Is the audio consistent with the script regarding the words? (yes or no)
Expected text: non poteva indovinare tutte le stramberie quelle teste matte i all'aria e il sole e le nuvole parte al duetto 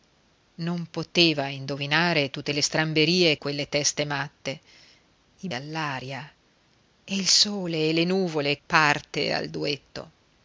yes